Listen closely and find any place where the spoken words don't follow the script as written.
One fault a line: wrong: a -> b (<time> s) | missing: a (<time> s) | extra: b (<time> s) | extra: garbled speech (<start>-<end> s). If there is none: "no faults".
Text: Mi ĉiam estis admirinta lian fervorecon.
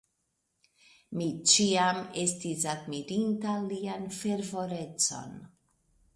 no faults